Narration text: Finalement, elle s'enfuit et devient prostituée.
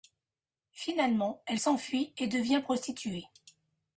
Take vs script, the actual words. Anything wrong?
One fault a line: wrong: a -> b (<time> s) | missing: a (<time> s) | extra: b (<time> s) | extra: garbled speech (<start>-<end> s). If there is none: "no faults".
no faults